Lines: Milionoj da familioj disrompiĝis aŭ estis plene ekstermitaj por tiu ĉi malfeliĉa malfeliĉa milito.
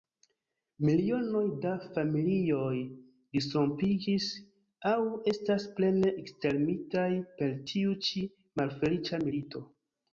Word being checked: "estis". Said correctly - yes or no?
no